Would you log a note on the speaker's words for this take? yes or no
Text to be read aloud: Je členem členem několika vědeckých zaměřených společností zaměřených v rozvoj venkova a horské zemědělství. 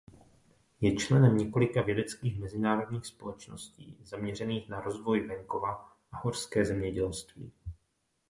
yes